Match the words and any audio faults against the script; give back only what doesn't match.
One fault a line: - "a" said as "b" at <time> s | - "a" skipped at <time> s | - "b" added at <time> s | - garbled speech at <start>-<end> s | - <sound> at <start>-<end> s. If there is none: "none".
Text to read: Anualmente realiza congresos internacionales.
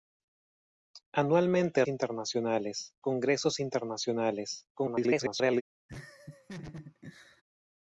- "realiza" said as "internacionales" at 1.9 s
- garbled speech at 4.7-5.6 s
- laugh at 5.9-7.4 s